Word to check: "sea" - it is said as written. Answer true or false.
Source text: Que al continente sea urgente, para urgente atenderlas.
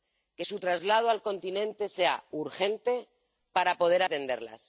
true